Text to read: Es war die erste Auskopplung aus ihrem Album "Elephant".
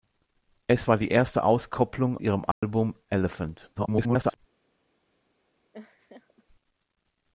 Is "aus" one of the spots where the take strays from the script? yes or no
yes